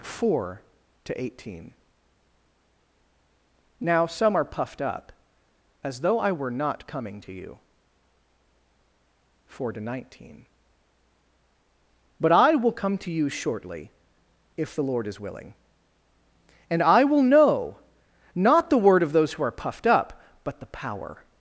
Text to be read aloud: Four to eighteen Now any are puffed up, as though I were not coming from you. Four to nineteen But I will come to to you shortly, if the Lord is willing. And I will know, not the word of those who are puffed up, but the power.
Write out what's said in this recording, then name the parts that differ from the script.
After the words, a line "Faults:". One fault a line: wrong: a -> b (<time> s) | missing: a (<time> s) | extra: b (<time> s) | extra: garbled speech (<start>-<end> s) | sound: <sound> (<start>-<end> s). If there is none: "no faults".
Four to eighteen Now some are puffed up, as though I were not coming to you. Four to nineteen But I will come to you shortly, if the Lord is willing. And I will know, not the word of those who are puffed up, but the power.
Faults:
wrong: any -> some (4.1 s)
wrong: from -> to (7.2 s)
missing: to (13.1 s)